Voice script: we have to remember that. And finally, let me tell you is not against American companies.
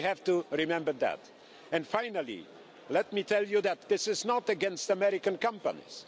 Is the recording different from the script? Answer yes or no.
yes